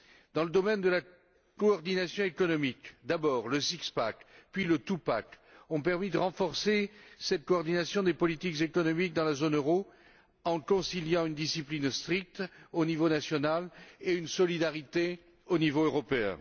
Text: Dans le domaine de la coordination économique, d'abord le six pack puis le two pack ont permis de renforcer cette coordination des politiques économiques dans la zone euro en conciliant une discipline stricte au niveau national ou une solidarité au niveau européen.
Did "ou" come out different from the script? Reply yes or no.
yes